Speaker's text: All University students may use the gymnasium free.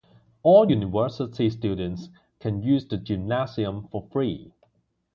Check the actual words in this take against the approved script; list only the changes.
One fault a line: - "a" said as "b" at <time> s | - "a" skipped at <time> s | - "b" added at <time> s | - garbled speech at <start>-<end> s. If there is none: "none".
- "may" said as "can" at 2.4 s
- "for" added at 3.9 s